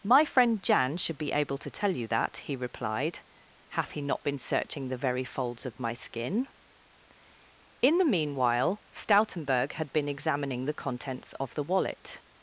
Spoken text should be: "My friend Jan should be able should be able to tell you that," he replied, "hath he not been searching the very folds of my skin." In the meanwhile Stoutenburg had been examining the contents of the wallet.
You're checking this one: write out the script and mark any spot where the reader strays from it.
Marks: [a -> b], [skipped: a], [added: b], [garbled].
"My friend Jan should be able [skipped: should be able] to tell you that," he replied, "hath he not been searching the very folds of my skin." In the meanwhile Stoutenburg had been examining the contents of the wallet.